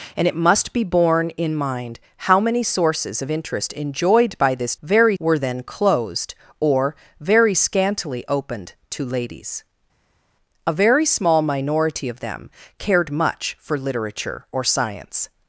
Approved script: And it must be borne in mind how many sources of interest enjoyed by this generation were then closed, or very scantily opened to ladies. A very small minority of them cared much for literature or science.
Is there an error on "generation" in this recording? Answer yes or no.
yes